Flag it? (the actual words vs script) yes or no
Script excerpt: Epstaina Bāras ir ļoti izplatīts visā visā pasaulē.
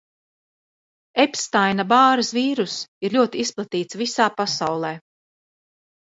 yes